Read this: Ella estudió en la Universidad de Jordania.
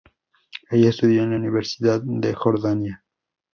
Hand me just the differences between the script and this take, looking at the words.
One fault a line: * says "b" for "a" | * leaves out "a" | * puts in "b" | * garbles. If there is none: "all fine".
all fine